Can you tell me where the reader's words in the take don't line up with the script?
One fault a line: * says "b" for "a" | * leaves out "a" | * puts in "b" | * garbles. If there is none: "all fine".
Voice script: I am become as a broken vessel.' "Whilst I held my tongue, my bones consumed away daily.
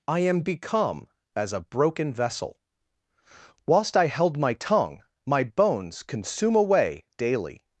* says "consume" for "consumed"